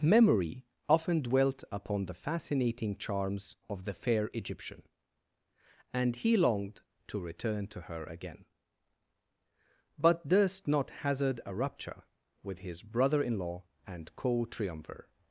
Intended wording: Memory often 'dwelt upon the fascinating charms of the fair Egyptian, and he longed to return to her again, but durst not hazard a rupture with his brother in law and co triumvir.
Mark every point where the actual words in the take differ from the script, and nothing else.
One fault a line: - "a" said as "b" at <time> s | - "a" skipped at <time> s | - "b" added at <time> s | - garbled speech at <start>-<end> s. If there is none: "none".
none